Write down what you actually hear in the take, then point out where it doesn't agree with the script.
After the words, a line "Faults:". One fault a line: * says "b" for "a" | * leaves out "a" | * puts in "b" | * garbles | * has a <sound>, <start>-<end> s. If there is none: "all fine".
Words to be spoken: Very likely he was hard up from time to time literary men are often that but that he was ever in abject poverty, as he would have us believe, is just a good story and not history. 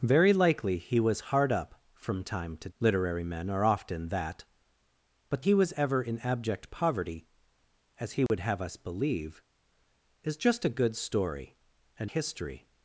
Very likely he was hard up from time to literary men are often that but he was ever in abject poverty, as he would have us believe, is just a good story and history.
Faults:
* leaves out "time"
* leaves out "that"
* has a dropout, 8.3-8.3 s
* leaves out "not"